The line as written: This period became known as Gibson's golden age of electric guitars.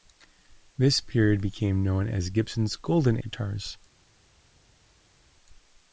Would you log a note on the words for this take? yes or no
yes